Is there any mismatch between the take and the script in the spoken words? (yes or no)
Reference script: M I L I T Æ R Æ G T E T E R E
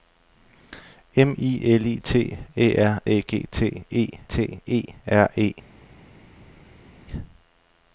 no